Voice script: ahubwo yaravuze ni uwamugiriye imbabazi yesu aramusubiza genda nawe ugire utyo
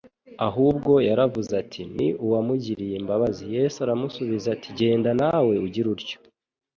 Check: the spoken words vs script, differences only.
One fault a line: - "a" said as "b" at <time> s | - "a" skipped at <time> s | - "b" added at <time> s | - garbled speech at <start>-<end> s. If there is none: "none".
- "ati" added at 1.6 s
- "ati" added at 4.5 s